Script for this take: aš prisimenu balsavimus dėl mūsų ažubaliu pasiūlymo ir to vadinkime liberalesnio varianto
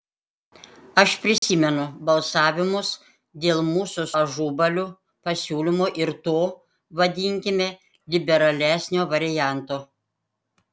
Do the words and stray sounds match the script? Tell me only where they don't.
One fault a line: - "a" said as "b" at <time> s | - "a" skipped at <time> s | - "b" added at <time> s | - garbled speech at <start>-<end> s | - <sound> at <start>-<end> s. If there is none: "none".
- dropout at 1.4-1.4 s